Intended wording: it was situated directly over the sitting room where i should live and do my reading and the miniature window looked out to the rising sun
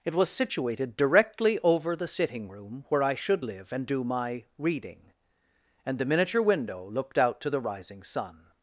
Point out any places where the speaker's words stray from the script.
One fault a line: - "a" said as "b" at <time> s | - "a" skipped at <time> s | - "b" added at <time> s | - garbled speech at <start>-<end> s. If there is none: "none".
none